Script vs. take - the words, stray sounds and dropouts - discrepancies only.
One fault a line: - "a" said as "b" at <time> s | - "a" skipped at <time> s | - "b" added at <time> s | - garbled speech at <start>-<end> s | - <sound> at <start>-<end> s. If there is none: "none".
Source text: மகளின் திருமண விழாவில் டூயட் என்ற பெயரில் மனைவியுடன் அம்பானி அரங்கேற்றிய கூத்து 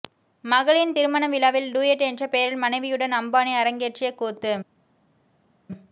none